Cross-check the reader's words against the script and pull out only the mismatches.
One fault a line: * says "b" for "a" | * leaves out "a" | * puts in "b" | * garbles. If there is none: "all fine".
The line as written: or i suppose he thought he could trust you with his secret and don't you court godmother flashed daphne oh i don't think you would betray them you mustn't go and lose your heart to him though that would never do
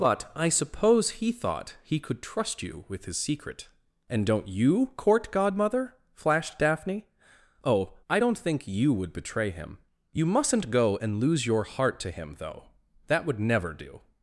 * says "but" for "or"
* says "him" for "them"